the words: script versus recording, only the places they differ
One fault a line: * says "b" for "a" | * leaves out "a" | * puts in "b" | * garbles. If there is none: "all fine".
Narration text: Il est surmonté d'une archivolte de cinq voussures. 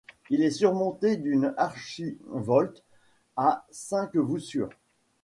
* says "à" for "de"